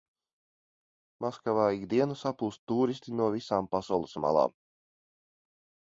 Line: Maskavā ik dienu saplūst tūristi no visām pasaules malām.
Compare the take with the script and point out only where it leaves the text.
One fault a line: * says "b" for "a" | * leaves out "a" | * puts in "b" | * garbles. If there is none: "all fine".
all fine